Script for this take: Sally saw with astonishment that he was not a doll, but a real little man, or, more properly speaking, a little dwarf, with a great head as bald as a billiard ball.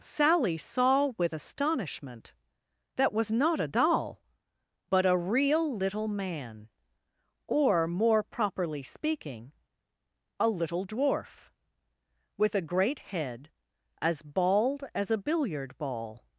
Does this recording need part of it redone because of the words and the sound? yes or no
yes